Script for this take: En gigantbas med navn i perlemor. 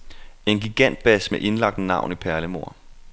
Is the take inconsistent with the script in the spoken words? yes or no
yes